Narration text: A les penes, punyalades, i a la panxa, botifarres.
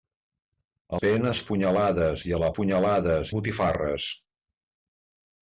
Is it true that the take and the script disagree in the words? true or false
true